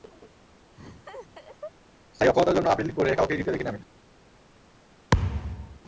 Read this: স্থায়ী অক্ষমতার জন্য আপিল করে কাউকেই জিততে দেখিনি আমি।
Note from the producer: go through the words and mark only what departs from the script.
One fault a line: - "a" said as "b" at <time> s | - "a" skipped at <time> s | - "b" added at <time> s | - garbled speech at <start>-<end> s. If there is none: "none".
none